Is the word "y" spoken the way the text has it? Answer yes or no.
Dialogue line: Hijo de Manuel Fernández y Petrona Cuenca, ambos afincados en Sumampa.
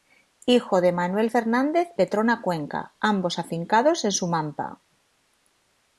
no